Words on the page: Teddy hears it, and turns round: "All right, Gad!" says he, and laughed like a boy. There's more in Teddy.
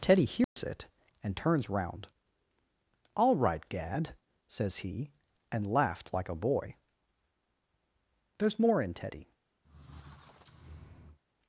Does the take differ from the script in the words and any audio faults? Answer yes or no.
yes